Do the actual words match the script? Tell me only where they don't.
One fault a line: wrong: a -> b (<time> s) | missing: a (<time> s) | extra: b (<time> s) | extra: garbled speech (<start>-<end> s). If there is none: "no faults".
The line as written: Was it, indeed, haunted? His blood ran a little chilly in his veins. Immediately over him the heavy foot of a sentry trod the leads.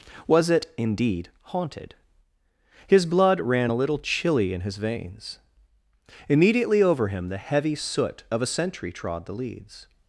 wrong: foot -> soot (7.8 s)